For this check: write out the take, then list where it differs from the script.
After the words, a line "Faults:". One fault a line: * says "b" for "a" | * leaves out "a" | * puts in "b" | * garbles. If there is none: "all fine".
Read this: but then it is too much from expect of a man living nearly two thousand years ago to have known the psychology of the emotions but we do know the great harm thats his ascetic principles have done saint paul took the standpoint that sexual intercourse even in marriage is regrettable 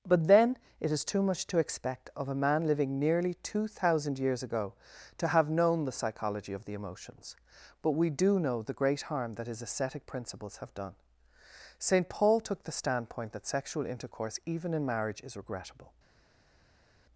but then it is too much to expect of a man living nearly two thousand years ago to have known the psychology of the emotions but we do know the great harm that his ascetic principles have done saint paul took the standpoint that sexual intercourse even in marriage is regrettable
Faults:
* says "to" for "from"
* says "that" for "thats"